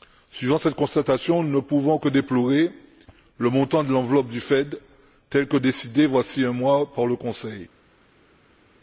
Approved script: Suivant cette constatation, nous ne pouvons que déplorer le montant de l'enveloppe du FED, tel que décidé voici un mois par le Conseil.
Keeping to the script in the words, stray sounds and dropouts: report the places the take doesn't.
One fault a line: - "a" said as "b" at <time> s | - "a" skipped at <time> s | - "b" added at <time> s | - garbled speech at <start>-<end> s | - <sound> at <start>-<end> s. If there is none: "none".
none